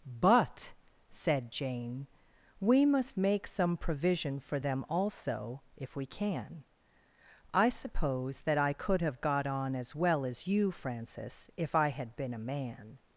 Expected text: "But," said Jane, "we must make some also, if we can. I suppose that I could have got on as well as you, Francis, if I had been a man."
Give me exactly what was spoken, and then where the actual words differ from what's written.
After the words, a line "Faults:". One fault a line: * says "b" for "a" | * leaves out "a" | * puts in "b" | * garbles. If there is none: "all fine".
"But," said Jane, "we must make some provision for them also, if we can. I suppose that I could have got on as well as you, Francis, if I had been a man."
Faults:
* puts in "provision for them"